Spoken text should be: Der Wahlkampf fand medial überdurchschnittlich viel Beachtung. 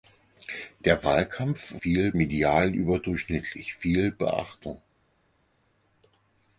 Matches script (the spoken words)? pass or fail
fail